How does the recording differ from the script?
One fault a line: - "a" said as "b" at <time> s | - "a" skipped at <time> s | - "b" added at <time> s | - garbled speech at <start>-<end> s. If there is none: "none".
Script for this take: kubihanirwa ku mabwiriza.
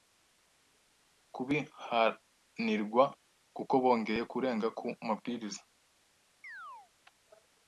- "kuko bongeye kurenga" added at 3.5 s